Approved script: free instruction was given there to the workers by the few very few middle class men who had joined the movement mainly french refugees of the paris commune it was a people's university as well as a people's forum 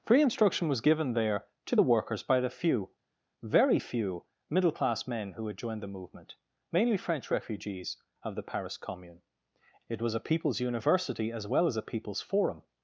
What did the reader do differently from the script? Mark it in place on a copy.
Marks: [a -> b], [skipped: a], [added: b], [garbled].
free instruction was given there to the workers by the few very few middle class men who had joined the movement mainly french refugees of the paris commune it was a people's university as well as a people's forum